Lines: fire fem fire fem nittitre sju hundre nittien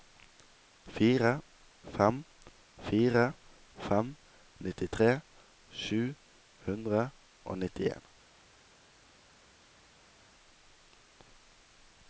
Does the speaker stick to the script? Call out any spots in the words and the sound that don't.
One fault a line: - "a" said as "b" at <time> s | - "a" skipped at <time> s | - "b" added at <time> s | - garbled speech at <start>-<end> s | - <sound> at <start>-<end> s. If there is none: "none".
- "og" added at 7.4 s